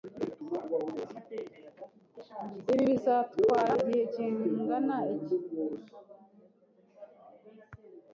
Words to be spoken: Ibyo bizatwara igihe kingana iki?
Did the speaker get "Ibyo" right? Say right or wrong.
wrong